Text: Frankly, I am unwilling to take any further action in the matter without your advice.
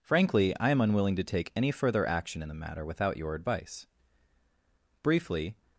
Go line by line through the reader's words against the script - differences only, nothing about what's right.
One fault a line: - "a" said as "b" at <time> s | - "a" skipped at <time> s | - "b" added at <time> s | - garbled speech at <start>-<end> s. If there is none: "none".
- "Briefly" added at 5.0 s